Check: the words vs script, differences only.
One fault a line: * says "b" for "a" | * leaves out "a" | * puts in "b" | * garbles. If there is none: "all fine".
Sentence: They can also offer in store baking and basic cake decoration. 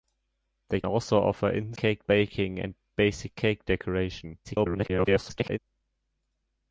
* leaves out "can"
* says "cake" for "store"
* garbles